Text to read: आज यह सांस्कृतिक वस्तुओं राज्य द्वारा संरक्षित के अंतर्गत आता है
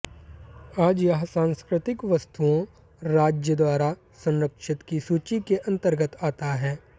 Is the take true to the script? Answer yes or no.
no